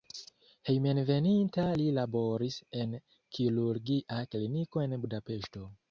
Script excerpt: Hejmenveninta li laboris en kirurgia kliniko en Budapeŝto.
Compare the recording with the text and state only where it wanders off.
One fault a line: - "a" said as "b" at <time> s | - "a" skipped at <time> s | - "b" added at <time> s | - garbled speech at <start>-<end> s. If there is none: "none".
none